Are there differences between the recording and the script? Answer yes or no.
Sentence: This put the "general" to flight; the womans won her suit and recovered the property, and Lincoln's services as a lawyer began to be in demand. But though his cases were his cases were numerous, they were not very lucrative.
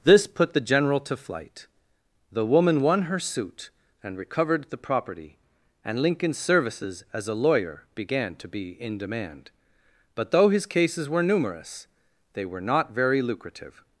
yes